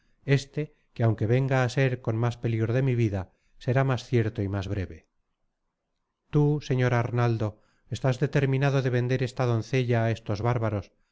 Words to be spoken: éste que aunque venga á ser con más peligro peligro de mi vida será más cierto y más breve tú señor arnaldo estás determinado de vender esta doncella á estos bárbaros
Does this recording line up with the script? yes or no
no